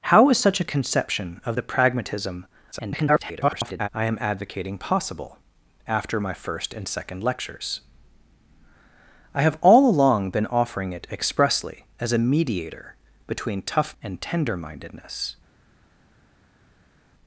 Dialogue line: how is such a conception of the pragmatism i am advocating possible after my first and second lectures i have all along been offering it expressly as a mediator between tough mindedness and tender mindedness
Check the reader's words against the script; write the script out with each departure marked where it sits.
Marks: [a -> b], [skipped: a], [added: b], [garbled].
how is such a conception of the pragmatism [garbled] i am advocating possible after my first and second lectures i have all along been offering it expressly as a mediator between tough [skipped: mindedness] and tender mindedness